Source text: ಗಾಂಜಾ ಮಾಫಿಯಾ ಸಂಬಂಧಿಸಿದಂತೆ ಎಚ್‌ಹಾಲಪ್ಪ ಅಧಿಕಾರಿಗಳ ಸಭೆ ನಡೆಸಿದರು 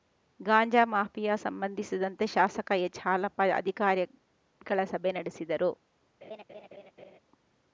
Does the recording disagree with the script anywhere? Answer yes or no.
yes